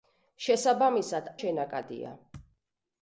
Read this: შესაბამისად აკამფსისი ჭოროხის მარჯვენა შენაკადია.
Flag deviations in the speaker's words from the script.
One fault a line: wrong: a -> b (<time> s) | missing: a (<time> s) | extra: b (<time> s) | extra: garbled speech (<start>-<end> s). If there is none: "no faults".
missing: აკამფსისი ჭოროხის მარჯვენა (1.3 s)